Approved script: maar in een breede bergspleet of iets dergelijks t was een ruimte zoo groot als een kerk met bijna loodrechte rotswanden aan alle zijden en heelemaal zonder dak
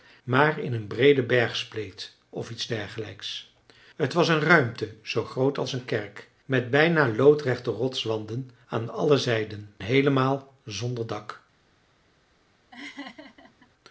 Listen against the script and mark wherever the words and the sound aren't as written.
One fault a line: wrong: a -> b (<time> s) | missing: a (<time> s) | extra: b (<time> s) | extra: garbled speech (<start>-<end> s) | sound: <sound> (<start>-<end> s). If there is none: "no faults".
missing: en (9.7 s)
sound: laugh (12.7-13.7 s)